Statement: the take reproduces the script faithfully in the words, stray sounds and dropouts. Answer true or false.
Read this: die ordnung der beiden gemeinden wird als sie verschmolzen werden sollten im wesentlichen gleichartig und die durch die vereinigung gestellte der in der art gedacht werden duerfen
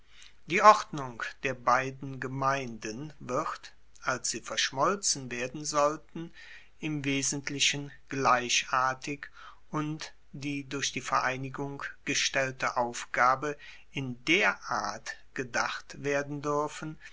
false